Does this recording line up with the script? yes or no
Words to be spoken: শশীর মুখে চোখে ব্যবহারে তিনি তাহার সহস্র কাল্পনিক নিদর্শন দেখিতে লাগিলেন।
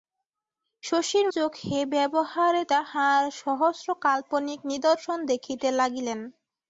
no